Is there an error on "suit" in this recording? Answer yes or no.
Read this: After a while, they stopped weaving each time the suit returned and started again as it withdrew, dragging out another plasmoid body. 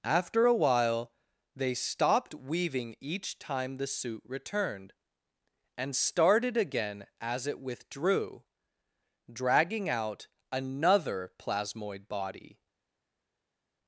no